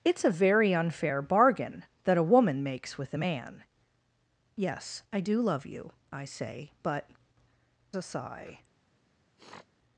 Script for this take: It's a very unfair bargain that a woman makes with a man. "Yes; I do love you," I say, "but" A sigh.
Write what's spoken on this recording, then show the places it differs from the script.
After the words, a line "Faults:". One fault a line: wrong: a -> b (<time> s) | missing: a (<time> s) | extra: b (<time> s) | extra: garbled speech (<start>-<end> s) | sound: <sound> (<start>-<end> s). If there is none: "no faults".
It's a very unfair bargain that a woman makes with a man. "Yes; I do love you," I say, "but" A sigh.
Faults:
sound: sniff (9.4-9.7 s)